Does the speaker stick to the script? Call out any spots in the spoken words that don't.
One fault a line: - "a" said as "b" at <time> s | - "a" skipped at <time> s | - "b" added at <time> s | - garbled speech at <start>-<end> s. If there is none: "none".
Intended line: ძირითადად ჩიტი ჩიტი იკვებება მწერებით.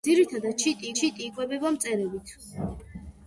none